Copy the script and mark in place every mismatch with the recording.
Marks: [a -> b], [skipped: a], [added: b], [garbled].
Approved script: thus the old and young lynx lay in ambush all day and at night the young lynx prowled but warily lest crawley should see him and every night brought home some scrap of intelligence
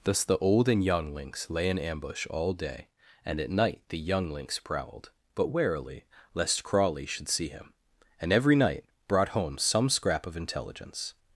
thus the old and young lynx lay in ambush all day and at night the young lynx prowled but warily lest crawley should see him and every night brought home some scrap of intelligence